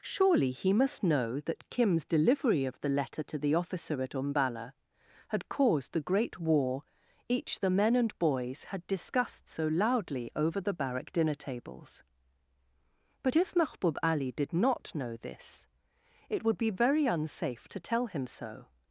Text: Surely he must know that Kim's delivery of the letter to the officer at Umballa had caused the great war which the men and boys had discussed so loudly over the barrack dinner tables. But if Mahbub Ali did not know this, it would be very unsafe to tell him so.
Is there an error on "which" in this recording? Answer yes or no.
yes